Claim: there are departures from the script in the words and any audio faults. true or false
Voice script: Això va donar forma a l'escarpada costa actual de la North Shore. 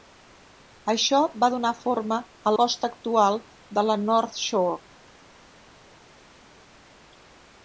true